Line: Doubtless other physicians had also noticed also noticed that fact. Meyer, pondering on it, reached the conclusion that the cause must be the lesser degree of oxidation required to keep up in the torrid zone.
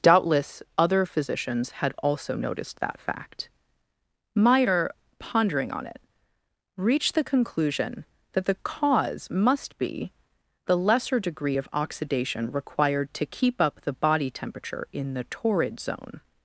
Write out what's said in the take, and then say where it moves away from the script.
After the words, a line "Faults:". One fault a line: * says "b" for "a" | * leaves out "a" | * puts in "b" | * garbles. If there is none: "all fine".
Doubtless other physicians had also noticed that fact. Meyer, pondering on it, reached the conclusion that the cause must be the lesser degree of oxidation required to keep up the body temperature in the torrid zone.
Faults:
* leaves out "also noticed"
* puts in "the body temperature"